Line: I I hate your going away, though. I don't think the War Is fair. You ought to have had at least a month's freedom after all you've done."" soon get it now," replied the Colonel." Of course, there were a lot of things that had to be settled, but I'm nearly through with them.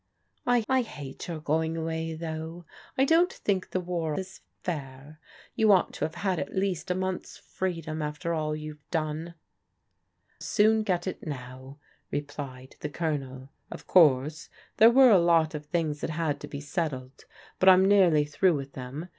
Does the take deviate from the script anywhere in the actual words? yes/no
no